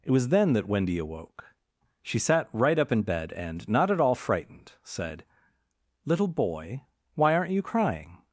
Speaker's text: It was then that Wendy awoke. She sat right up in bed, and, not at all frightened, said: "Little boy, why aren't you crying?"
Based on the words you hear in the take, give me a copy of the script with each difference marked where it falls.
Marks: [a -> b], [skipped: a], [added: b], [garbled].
It was then that Wendy awoke. She sat right up in bed, and, not at all frightened, said: "Little boy, why aren't you crying?"